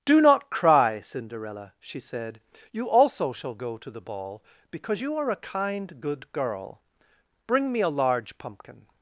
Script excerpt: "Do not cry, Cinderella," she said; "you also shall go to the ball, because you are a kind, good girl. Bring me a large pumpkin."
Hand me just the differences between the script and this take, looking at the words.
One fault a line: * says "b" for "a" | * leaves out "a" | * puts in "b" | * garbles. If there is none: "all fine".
all fine